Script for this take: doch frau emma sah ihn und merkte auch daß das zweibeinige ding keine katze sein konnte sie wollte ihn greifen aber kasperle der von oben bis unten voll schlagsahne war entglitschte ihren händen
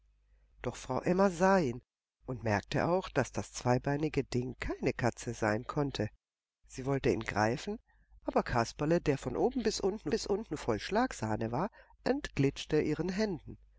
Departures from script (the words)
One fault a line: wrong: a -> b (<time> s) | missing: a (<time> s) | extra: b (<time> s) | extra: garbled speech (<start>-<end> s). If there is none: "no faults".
extra: bis unten (10.1 s)